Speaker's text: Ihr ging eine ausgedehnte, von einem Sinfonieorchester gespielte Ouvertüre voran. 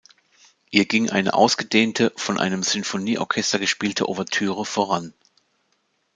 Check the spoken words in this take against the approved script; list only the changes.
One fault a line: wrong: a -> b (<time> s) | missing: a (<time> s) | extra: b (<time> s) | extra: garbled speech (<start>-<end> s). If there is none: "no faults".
no faults